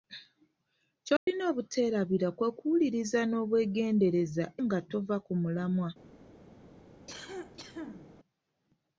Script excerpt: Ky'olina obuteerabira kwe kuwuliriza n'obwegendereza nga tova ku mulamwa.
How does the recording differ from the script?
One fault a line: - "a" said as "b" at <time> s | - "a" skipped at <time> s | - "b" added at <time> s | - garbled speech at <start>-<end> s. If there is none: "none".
none